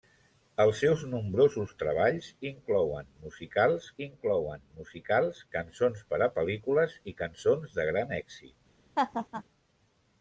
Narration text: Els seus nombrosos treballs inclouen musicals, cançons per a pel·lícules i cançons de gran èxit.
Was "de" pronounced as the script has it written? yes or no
yes